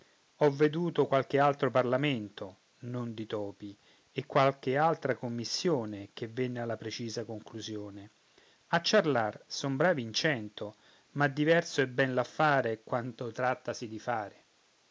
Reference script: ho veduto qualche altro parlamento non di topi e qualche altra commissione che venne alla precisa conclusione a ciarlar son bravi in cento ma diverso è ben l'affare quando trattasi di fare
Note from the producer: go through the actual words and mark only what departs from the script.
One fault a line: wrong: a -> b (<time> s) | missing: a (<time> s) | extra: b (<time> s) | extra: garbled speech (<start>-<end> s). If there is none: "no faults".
no faults